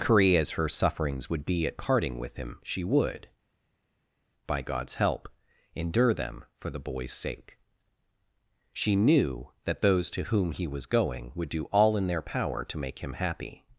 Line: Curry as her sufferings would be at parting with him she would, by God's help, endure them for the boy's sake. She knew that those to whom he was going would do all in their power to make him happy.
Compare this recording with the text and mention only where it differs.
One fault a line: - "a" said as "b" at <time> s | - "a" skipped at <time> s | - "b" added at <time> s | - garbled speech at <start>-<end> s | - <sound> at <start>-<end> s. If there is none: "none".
none